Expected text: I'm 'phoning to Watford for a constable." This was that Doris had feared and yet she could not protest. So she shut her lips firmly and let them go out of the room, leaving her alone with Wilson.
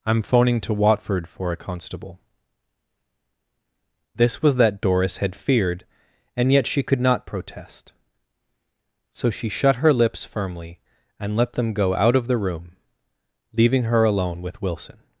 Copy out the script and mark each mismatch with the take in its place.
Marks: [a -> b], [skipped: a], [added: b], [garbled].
I'm 'phoning to Watford for a constable." This was that Doris had feared and yet she could not protest. So she shut her lips firmly and let them go out of the room, leaving her alone with Wilson.